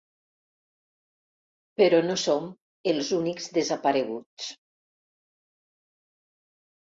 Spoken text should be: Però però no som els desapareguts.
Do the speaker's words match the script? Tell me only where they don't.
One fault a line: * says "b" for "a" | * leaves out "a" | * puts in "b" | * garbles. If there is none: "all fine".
* leaves out "però"
* puts in "únics"